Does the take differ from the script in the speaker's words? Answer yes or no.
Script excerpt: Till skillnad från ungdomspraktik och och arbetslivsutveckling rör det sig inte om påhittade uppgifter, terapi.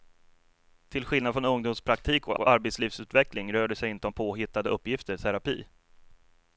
no